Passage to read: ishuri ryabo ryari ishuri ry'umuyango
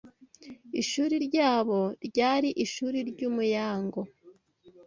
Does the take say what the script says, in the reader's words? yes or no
yes